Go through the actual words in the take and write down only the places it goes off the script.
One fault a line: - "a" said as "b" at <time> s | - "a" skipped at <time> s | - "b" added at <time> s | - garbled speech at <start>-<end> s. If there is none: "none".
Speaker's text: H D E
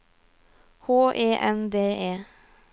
- "E N" added at 1.1 s